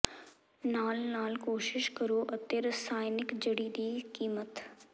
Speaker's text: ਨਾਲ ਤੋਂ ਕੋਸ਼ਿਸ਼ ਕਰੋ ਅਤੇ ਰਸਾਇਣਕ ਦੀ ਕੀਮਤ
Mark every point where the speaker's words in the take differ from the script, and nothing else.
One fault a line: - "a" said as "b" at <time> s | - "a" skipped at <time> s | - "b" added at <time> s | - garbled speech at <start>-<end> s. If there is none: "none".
- "ਤੋਂ" said as "ਨਾਲ" at 1.0 s
- "ਜੜੀ" added at 3.4 s